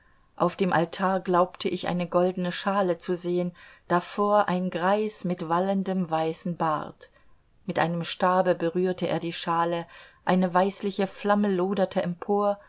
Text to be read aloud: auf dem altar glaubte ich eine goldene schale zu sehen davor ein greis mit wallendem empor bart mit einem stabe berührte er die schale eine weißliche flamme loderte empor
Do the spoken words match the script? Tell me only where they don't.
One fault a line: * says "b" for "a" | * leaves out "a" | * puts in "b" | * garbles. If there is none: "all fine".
* says "weißen" for "empor"